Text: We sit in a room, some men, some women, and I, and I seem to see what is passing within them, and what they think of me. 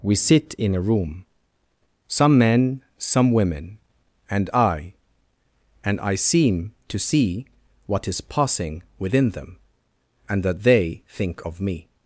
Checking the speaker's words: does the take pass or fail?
fail